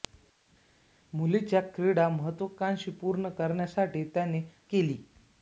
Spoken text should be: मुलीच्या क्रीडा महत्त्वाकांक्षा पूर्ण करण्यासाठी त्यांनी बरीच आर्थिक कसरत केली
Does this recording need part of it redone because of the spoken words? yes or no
yes